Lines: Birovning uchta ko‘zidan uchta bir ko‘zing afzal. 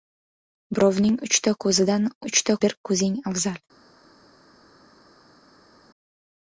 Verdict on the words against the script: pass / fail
pass